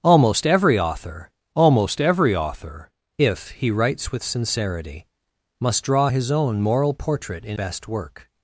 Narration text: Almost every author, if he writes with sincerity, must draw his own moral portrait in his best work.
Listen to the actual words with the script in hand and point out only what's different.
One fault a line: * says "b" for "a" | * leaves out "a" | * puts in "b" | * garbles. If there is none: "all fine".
* puts in "almost every author"
* leaves out "his"